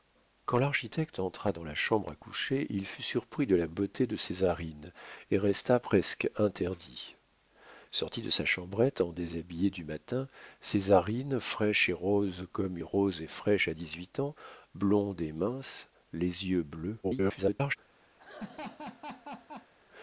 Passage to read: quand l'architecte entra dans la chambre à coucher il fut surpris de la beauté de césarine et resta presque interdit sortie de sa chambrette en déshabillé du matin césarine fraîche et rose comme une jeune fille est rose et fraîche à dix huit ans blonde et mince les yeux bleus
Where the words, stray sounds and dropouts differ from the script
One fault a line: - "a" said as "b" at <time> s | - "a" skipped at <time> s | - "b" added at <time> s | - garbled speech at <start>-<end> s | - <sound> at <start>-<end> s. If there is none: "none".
- "une jeune fille" skipped at 12.8 s
- garbled speech at 17.0-17.8 s
- laugh at 18.2-19.7 s